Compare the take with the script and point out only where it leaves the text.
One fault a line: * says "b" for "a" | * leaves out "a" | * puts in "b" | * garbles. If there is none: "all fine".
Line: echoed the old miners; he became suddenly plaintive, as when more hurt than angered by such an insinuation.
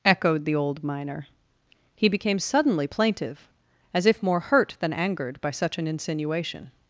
* says "miner" for "miners"
* says "if" for "when"